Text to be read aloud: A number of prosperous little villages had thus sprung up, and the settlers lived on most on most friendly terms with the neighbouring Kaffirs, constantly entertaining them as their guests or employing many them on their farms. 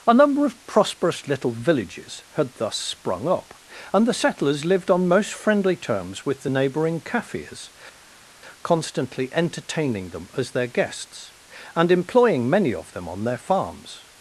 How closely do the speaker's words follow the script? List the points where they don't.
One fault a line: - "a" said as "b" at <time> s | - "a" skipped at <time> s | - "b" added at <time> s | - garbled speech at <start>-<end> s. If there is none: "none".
- "on most" skipped at 5.3 s
- "or" said as "and" at 11.7 s
- "of" added at 12.7 s